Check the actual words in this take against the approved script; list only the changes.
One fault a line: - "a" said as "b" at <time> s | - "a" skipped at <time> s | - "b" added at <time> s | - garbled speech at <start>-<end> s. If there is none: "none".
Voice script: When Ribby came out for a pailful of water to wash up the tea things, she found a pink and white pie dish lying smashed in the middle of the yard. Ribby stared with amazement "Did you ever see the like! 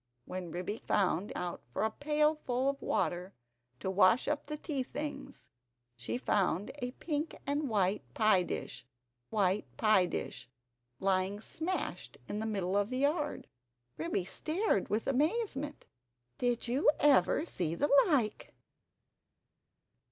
- "came" said as "found" at 0.8 s
- "white pie dish" added at 9.3 s